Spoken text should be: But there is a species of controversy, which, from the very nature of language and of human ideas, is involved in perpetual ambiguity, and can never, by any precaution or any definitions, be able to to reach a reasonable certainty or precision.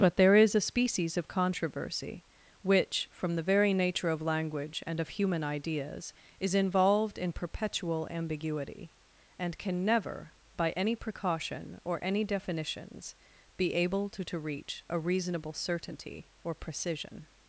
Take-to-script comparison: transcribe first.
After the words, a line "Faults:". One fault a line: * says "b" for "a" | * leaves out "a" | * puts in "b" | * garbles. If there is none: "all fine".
But there is a species of controversy, which, from the very nature of language and of human ideas, is involved in perpetual ambiguity, and can never, by any precaution or any definitions, be able to to reach a reasonable certainty or precision.
Faults:
all fine